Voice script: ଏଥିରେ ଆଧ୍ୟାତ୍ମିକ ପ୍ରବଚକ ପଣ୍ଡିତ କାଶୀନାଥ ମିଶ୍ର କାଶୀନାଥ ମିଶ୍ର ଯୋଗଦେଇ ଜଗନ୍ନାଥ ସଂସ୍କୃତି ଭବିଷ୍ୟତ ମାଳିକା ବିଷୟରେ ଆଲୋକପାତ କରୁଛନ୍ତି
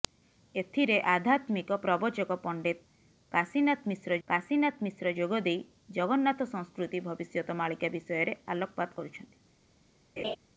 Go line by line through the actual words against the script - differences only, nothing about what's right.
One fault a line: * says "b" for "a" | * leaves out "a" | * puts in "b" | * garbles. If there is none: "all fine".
all fine